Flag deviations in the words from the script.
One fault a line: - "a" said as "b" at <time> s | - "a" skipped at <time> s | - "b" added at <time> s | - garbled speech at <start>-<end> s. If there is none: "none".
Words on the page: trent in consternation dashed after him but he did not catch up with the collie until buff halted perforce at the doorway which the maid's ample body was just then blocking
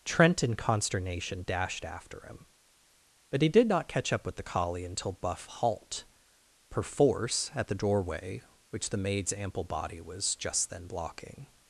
- "halted" said as "halt" at 5.5 s